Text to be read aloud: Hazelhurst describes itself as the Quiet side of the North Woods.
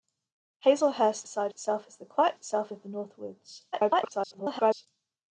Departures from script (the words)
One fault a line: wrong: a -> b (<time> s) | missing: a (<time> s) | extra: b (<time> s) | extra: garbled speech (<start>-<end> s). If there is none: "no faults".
wrong: describes -> side (1.3 s)
wrong: side -> itself (2.3 s)
extra: garbled speech (3.7-4.9 s)